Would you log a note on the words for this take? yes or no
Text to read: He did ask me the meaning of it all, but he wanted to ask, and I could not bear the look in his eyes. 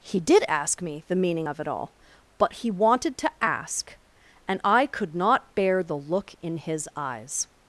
no